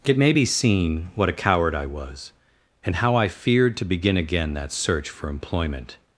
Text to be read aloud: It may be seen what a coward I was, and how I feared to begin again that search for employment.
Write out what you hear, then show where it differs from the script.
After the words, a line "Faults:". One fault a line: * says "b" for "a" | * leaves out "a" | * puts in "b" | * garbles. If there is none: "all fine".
It may be seen what a coward I was, and how I feared to begin again that search for employment.
Faults:
all fine